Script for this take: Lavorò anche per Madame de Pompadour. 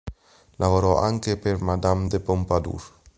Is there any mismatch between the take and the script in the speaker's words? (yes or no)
no